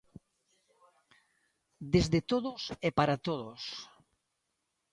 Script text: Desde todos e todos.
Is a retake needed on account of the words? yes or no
yes